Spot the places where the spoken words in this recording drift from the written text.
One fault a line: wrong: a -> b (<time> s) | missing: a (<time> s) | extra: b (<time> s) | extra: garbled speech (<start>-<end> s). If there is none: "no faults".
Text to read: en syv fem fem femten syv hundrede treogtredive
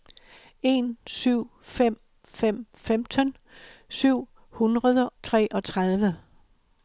no faults